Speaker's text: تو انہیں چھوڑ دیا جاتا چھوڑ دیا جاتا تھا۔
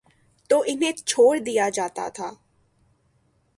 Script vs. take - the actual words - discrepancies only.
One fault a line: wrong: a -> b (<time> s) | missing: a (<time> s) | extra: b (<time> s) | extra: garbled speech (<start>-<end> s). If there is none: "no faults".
missing: چھوڑ دیا جاتا (2.1 s)